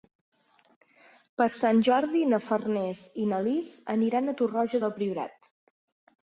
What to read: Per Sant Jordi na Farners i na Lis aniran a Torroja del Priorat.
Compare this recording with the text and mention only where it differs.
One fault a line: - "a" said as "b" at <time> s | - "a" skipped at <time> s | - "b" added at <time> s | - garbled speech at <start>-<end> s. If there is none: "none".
none